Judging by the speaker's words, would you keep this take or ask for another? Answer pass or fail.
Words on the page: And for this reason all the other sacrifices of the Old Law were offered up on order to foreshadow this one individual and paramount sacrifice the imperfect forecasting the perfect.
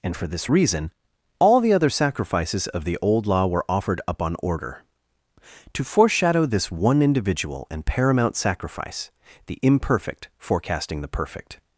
pass